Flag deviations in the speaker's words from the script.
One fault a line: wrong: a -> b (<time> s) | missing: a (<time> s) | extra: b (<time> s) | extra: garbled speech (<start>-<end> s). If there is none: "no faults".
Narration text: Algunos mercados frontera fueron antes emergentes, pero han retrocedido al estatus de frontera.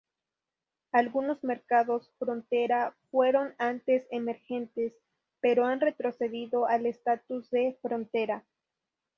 no faults